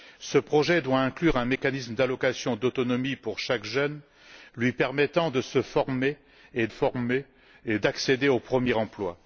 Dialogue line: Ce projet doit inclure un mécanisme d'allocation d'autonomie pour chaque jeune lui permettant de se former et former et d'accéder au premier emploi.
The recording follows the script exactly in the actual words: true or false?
true